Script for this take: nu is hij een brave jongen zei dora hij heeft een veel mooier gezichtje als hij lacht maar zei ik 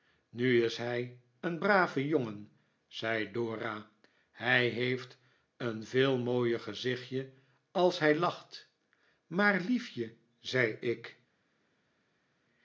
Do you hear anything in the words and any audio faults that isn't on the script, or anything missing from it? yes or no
yes